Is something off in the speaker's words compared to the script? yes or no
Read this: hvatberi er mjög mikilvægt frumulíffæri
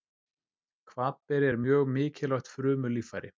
no